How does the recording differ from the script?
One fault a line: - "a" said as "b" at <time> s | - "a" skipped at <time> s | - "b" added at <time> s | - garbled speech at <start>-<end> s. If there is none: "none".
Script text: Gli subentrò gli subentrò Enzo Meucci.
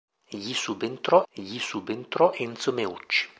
none